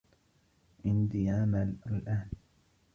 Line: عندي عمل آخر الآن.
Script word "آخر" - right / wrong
wrong